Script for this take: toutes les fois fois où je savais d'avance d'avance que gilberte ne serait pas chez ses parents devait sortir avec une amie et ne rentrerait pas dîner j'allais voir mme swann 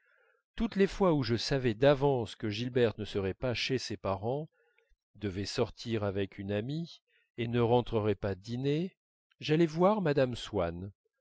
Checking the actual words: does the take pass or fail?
fail